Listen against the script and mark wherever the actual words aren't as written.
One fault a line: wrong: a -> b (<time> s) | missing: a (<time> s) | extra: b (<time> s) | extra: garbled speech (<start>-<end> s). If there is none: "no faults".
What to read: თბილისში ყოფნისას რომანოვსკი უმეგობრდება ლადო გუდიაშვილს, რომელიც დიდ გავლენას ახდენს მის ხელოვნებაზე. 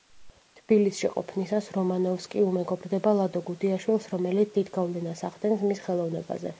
no faults